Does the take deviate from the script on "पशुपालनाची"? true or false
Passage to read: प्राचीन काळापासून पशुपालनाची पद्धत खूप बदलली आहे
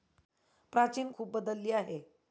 true